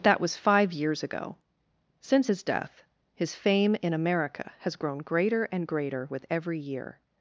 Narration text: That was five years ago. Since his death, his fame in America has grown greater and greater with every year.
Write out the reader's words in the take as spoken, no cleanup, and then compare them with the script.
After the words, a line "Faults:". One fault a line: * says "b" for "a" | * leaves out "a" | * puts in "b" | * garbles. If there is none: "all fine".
That was five years ago. Since his death, his fame in America has grown greater and greater with every year.
Faults:
all fine